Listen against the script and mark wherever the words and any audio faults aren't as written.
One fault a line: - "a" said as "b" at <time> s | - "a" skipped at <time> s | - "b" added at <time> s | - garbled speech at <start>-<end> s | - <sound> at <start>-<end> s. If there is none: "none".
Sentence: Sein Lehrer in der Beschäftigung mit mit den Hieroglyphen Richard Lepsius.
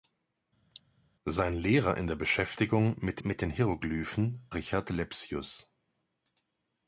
- cough at 0.7-0.8 s